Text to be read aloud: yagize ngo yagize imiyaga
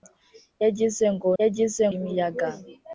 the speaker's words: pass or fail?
pass